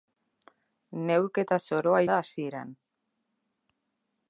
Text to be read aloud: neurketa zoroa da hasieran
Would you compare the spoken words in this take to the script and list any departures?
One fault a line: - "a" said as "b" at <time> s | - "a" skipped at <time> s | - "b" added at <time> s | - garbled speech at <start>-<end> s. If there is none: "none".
none